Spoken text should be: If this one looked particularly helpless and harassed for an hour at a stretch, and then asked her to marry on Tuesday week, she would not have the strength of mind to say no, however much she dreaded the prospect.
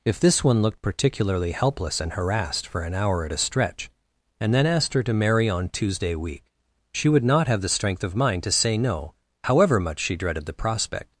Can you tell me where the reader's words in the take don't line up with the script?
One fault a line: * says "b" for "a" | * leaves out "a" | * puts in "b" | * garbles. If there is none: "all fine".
all fine